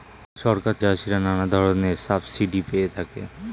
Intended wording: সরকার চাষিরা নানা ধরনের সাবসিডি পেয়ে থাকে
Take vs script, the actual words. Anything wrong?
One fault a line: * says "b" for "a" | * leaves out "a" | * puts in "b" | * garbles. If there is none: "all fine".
all fine